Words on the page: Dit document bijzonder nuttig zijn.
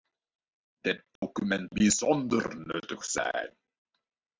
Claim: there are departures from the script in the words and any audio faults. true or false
true